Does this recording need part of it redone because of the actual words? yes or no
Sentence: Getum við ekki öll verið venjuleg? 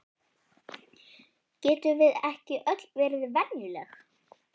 no